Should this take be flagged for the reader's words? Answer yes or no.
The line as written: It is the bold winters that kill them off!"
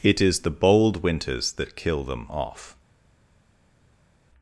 no